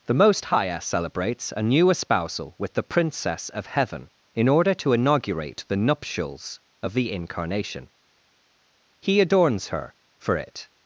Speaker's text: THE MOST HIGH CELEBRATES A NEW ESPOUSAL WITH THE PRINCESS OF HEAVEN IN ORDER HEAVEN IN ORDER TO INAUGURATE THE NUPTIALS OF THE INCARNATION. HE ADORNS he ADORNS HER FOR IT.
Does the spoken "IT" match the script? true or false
true